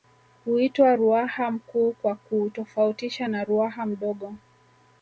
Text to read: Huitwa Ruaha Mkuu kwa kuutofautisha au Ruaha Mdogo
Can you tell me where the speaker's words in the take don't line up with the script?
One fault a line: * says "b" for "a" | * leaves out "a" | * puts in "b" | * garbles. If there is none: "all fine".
* says "na" for "au"